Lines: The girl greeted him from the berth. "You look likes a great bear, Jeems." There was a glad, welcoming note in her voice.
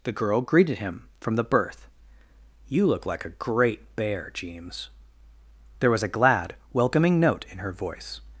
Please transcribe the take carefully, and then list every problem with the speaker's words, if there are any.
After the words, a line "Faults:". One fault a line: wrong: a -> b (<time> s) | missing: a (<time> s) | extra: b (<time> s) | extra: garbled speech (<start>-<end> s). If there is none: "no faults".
The girl greeted him from the berth. "You look like a great bear, Jeems." There was a glad, welcoming note in her voice.
Faults:
wrong: likes -> like (3.0 s)